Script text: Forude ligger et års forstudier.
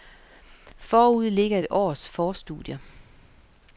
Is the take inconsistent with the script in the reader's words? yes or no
no